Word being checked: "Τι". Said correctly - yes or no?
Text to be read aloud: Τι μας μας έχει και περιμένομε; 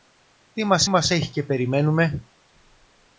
yes